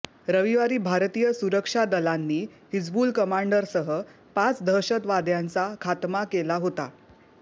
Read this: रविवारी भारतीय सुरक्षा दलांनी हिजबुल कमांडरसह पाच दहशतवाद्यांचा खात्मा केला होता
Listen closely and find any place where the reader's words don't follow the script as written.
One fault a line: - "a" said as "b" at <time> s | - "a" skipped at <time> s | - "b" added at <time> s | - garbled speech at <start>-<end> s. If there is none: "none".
none